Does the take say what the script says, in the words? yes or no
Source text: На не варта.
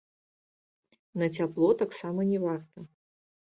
no